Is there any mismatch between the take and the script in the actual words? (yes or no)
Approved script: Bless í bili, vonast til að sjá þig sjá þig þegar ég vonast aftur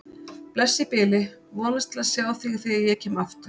yes